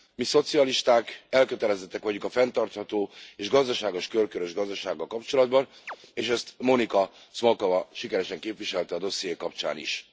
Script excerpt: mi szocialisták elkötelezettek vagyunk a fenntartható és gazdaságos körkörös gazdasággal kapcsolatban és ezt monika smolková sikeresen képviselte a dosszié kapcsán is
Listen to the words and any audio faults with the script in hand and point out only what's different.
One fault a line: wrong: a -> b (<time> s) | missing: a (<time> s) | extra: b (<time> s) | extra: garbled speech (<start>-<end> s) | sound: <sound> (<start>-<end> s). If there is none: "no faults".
sound: chirp (5.9-6.0 s)